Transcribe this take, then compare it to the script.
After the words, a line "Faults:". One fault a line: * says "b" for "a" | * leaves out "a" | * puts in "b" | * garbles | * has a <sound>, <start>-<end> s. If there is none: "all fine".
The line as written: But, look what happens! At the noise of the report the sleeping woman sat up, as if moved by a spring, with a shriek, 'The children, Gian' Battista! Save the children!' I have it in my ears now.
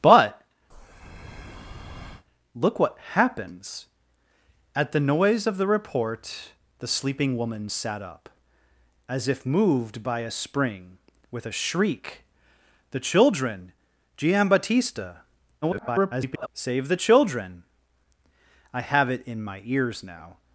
But, look what happens! At the noise of the report the sleeping woman sat up, as if moved by a spring, with a shriek, 'The children, Gian' Battista! [garbled] Save the children!' I have it in my ears now.
Faults:
* has a breath, 0.7-2.2 s
* garbles